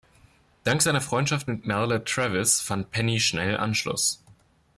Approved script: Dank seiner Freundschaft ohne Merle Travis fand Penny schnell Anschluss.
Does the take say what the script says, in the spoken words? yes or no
no